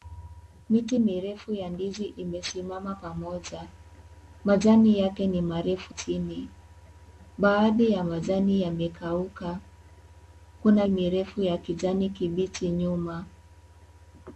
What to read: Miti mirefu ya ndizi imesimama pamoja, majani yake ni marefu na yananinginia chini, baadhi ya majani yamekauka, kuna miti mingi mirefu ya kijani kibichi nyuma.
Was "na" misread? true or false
true